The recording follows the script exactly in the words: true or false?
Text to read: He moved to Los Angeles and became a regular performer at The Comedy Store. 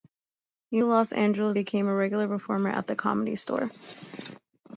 false